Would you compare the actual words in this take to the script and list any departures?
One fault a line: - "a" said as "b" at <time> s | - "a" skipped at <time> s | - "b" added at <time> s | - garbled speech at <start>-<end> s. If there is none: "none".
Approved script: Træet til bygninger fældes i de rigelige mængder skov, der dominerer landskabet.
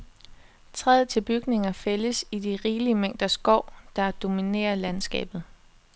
none